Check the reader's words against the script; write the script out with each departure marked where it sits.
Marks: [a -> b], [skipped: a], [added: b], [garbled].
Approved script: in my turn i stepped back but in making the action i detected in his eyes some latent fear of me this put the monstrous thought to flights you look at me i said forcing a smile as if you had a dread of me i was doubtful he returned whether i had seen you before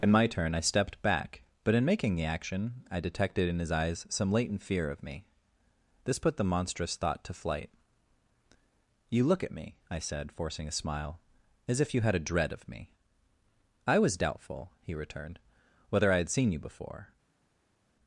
in my turn i stepped back but in making the action i detected in his eyes some latent fear of me this put the monstrous thought to [flights -> flight] you look at me i said forcing a smile as if you had a dread of me i was doubtful he returned whether i had seen you before